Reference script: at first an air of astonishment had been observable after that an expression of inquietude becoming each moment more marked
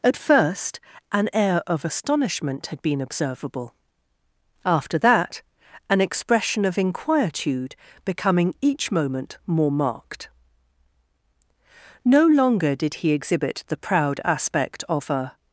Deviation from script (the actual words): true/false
true